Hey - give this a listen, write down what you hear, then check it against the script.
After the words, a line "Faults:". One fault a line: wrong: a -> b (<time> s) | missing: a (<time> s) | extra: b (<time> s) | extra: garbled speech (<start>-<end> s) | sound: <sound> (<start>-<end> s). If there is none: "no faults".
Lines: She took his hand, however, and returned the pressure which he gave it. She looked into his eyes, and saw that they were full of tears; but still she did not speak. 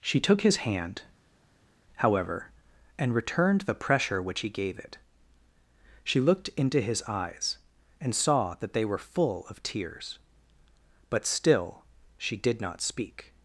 She took his hand, however, and returned the pressure which he gave it. She looked into his eyes, and saw that they were full of tears; but still she did not speak.
Faults:
no faults